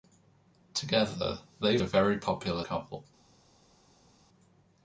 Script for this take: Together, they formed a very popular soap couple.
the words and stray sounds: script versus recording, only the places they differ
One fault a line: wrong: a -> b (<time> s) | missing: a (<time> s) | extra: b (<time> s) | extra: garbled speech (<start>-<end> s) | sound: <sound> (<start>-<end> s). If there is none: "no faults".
missing: formed (1.8 s)
missing: soap (2.6 s)